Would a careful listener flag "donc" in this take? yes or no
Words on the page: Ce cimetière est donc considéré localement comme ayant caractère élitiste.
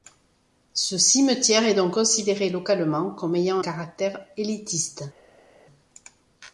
no